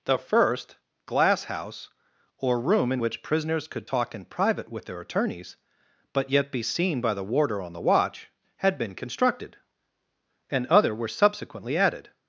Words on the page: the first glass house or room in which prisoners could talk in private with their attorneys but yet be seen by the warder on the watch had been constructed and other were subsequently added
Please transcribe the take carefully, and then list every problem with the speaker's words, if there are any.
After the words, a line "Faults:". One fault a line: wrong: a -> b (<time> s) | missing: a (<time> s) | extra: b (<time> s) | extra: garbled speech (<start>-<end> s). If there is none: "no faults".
the first glass house or room in which prisoners could talk in private with their attorneys but yet be seen by the warder on the watch had been constructed and other were subsequently added
Faults:
no faults